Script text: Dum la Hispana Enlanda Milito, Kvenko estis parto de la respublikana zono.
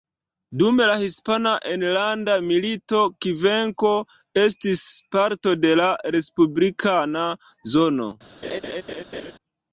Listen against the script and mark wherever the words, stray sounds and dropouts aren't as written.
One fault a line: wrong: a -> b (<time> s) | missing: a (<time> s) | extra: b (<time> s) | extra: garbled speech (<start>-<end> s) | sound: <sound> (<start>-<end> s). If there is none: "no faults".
sound: laugh (8.4-9.3 s)